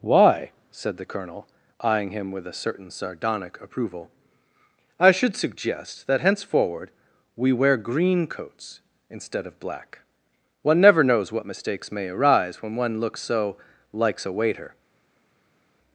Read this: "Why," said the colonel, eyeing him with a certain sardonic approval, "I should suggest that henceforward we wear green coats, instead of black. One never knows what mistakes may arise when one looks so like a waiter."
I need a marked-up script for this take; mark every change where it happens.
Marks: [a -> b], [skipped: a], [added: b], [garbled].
"Why," said the colonel, eyeing him with a certain sardonic approval, "I should suggest that henceforward we wear green coats, instead of black. One never knows what mistakes may arise when one looks so [like -> likes] a waiter."